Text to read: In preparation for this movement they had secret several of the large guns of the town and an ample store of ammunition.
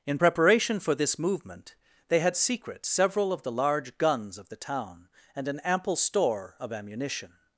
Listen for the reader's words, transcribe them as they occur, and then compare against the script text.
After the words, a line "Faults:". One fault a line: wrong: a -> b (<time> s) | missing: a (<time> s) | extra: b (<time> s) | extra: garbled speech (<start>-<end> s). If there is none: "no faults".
In preparation for this movement they had secret several of the large guns of the town and an ample store of ammunition.
Faults:
no faults